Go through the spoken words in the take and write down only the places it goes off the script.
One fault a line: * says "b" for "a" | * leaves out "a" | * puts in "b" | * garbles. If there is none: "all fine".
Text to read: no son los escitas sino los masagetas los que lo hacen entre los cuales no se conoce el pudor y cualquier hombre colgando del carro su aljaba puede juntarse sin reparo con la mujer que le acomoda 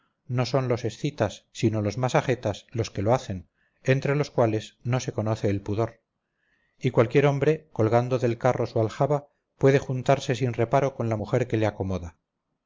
all fine